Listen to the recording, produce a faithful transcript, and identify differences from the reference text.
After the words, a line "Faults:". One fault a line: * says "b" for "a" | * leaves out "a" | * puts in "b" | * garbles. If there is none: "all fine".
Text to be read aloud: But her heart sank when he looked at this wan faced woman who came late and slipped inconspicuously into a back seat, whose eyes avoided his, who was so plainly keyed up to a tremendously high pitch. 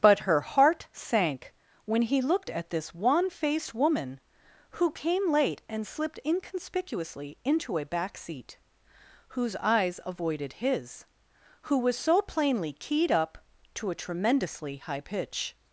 But her heart sank when he looked at this wan faced woman who came late and slipped inconspicuously into a back seat, whose eyes avoided his, who was so plainly keyed up to a tremendously high pitch.
Faults:
all fine